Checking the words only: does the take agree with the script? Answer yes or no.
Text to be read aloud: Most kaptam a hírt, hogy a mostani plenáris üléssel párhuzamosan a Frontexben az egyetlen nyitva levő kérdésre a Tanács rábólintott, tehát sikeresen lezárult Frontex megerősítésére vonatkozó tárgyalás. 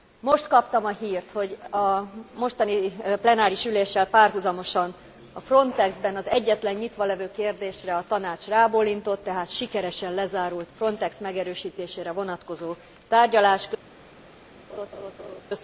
yes